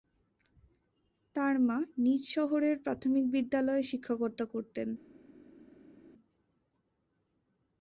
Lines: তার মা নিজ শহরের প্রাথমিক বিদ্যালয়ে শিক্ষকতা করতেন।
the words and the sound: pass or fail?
pass